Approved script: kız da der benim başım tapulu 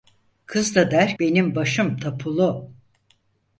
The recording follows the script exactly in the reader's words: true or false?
true